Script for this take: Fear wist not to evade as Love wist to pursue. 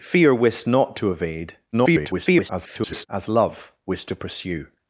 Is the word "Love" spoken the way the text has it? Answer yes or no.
yes